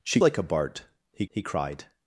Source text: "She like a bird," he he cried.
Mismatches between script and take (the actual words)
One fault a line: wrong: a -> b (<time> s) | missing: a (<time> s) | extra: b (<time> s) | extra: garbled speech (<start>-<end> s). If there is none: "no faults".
no faults